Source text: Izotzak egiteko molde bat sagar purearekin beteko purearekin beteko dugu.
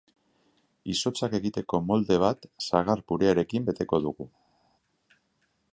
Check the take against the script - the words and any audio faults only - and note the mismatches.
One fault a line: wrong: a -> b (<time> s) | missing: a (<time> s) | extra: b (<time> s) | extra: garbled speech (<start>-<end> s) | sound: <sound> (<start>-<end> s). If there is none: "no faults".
missing: purearekin beteko (4.0 s)